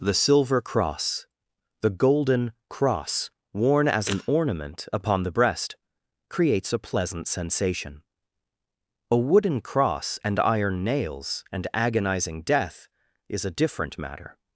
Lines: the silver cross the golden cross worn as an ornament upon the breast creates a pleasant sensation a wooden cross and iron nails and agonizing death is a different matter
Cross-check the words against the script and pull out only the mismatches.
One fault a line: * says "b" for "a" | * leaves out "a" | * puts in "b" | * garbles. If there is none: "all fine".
all fine